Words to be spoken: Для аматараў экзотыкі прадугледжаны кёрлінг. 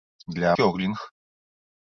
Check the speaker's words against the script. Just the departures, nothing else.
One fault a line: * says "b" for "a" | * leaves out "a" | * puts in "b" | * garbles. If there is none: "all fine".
* leaves out "аматараў экзотыкі прадугледжаны"